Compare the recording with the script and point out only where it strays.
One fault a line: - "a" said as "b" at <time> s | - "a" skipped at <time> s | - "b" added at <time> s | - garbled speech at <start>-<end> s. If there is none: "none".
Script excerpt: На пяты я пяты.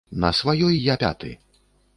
- "пяты" said as "сваёй" at 0.4 s